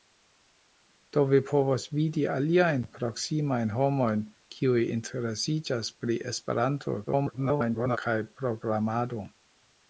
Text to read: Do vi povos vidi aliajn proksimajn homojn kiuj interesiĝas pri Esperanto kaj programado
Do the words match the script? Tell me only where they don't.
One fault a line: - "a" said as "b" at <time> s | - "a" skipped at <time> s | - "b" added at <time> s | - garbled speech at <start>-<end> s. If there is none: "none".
- garbled speech at 7.1-8.0 s